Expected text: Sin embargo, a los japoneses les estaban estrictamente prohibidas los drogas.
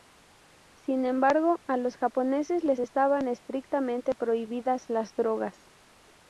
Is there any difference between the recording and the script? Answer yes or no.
yes